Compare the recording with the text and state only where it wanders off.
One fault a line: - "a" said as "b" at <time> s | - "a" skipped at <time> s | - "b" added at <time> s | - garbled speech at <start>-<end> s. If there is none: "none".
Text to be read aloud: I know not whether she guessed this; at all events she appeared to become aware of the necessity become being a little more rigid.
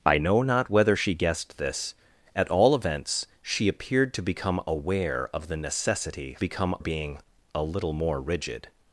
none